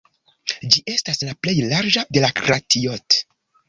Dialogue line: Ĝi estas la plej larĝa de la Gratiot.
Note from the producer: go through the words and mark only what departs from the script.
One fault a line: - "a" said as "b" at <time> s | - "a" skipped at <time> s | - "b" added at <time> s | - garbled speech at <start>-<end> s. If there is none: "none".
none